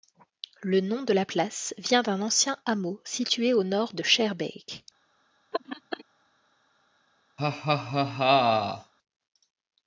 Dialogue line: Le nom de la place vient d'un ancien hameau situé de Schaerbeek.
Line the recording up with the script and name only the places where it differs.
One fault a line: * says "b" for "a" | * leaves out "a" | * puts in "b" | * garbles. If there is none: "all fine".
* puts in "au nord"